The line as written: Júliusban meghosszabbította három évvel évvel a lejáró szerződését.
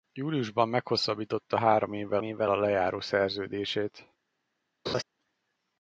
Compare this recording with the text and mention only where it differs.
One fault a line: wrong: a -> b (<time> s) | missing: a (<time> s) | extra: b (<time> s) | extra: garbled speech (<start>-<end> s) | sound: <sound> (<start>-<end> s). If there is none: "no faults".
sound: laugh (4.9-5.0 s)